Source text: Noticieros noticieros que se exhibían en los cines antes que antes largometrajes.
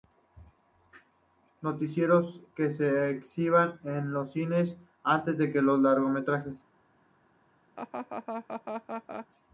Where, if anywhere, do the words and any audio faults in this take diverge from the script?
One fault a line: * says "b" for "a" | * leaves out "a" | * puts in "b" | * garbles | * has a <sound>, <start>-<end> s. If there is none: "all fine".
* leaves out "noticieros"
* says "los" for "antes"
* has a laugh, 7.8-9.3 s